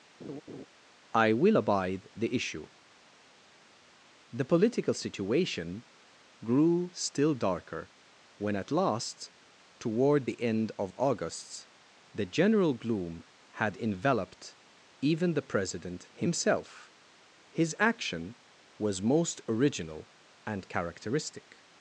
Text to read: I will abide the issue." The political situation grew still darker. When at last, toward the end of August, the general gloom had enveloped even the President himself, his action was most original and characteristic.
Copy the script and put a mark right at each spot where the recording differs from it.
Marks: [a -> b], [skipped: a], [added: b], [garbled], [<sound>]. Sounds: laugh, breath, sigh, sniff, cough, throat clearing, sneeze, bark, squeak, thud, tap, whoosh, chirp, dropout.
[laugh] I will abide the issue." The political situation grew still darker. When at last, toward the end of August, the general gloom had enveloped even the President himself, his action was most original and characteristic.